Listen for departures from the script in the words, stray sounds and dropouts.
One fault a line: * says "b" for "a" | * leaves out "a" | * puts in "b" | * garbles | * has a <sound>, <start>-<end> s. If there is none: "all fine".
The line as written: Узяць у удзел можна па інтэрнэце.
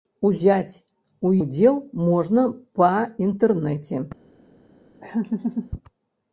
* has a laugh, 5.0-5.7 s